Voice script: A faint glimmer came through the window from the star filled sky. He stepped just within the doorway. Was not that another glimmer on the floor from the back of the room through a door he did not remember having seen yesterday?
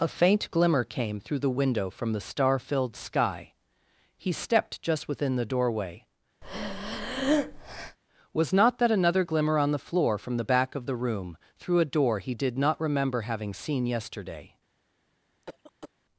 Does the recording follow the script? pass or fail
pass